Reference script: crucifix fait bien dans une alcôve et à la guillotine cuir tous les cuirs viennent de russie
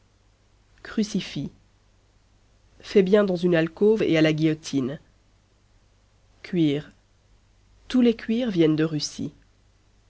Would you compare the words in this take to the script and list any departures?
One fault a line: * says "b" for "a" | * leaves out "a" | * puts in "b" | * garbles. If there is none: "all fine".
all fine